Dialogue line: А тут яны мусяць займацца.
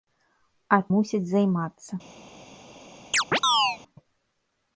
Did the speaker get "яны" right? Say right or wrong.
wrong